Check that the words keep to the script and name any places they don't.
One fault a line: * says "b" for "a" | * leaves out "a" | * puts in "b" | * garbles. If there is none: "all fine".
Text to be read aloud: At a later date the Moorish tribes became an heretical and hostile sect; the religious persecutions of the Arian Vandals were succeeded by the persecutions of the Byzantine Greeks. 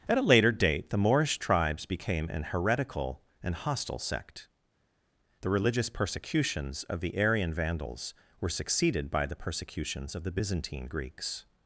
all fine